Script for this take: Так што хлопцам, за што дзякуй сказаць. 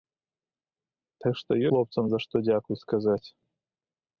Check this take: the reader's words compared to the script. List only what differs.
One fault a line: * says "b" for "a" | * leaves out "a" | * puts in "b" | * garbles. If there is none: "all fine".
all fine